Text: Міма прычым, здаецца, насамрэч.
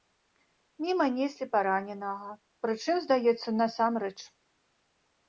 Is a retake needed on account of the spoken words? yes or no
yes